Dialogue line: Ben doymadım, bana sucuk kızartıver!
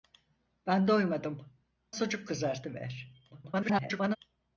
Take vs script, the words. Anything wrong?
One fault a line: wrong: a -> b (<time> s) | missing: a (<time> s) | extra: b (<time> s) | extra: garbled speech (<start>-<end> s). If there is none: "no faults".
missing: bana (1.5 s)
extra: garbled speech (3.3-4.2 s)